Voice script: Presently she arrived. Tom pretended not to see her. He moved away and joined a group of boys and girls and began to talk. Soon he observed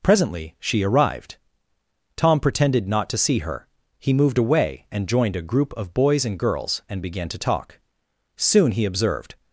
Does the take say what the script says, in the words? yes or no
yes